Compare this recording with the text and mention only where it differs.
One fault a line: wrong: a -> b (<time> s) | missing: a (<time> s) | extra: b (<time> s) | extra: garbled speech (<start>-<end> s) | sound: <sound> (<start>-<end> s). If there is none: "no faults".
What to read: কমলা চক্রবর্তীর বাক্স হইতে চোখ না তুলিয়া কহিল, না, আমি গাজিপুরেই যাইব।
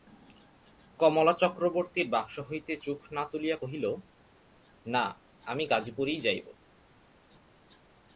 no faults